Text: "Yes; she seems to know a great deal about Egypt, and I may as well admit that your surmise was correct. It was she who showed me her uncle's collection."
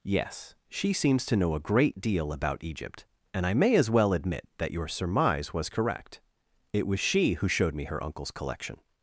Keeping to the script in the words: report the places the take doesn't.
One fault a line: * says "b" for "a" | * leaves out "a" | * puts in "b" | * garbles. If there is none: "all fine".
all fine